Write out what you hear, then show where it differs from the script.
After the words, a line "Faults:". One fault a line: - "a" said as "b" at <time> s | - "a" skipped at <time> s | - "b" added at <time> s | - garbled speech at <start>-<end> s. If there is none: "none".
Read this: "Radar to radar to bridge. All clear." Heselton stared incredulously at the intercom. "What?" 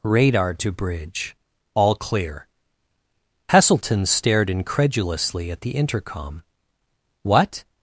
"Radar to bridge. All clear." Heselton stared incredulously at the intercom. "What?"
Faults:
- "radar to" skipped at 0.7 s